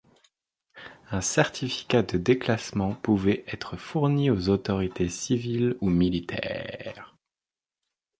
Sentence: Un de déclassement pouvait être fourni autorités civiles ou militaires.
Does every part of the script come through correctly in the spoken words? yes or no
no